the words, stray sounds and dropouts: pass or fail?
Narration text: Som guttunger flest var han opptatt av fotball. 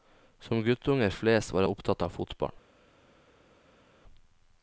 fail